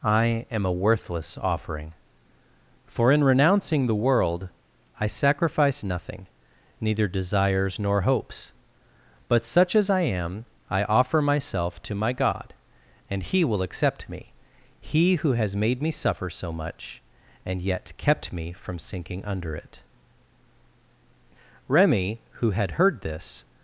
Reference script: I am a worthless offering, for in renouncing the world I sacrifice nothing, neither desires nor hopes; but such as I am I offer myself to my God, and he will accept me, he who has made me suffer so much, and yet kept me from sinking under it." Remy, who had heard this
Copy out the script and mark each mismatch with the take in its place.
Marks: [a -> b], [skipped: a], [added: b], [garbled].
I am a worthless offering, for in renouncing the world I sacrifice nothing, neither desires nor hopes; but such as I am I offer myself to my God, and he will accept me, he who has made me suffer so much, and yet kept me from sinking under it." Remy, who had heard this